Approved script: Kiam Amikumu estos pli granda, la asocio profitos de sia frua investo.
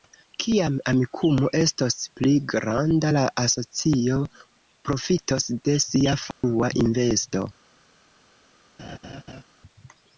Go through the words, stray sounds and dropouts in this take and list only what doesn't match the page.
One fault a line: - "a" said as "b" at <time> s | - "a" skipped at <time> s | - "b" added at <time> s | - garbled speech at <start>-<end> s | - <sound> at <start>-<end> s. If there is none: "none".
- dropout at 6.3-6.4 s
- laugh at 8.8-9.4 s